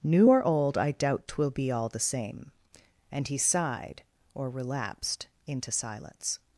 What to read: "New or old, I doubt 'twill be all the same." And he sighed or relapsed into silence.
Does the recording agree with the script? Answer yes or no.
yes